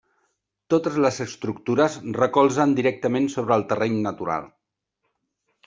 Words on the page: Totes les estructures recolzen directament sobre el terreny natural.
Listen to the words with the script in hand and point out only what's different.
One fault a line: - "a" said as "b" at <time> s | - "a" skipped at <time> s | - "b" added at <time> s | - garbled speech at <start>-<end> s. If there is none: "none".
none